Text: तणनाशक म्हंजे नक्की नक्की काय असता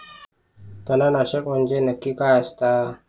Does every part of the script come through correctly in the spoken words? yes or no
no